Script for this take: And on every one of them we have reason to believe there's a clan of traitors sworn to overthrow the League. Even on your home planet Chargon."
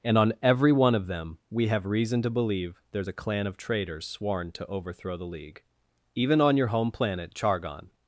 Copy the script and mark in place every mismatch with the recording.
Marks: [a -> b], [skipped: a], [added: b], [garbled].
And on every one of them we have reason to believe there's a clan of traitors sworn to overthrow the League. Even on your home planet Chargon."